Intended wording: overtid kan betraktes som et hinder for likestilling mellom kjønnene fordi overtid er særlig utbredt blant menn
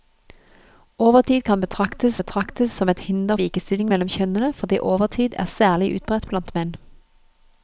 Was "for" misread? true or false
true